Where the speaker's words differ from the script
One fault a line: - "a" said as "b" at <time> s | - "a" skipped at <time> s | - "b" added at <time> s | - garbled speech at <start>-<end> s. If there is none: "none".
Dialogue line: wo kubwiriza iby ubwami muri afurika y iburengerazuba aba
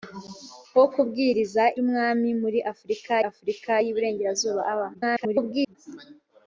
- "iby" skipped at 1.6 s
- "afurika" added at 3.3 s
- garbled speech at 4.9-5.8 s